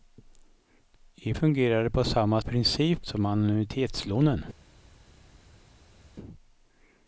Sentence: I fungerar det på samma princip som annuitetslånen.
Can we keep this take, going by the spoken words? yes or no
yes